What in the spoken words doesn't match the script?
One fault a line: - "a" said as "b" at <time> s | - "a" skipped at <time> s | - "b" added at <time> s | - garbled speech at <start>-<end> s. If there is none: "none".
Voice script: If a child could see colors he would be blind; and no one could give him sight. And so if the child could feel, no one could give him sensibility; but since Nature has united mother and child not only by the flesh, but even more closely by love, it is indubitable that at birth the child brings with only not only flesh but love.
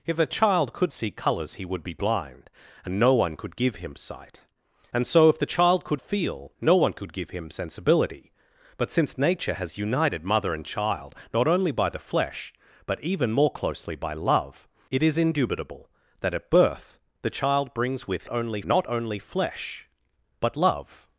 none